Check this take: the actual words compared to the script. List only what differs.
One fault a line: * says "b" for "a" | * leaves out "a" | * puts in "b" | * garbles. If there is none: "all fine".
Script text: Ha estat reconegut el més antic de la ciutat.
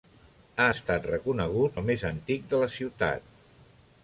all fine